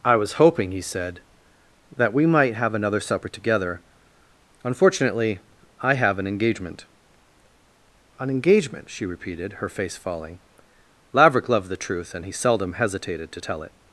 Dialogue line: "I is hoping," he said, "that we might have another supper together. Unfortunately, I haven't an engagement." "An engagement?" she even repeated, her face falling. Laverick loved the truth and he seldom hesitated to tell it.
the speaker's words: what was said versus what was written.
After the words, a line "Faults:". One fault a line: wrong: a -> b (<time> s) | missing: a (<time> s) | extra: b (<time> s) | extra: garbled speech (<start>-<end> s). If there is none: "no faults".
"I was hoping," he said, "that we might have another supper together. Unfortunately, I have an engagement." "An engagement?" she repeated, her face falling. Laverick loved the truth and he seldom hesitated to tell it.
Faults:
wrong: is -> was (0.1 s)
wrong: haven't -> have (5.9 s)
missing: even (9.1 s)